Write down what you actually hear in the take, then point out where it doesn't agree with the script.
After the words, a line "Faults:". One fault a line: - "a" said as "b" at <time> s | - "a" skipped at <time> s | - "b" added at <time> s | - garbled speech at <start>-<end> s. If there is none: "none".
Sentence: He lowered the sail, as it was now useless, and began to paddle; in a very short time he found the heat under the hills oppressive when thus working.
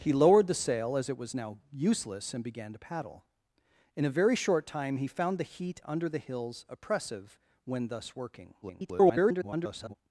He lowered the sail, as it was now useless, and began to paddle; in a very short time he found the heat under the hills oppressive when thus working. [garbled]
Faults:
- garbled speech at 8.6-9.9 s